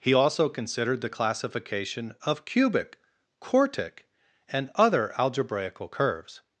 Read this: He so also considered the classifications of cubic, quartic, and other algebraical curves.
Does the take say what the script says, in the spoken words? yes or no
no